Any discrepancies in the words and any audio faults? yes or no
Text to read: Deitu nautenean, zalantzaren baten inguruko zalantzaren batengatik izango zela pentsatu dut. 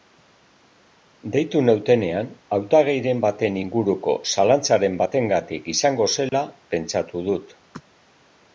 yes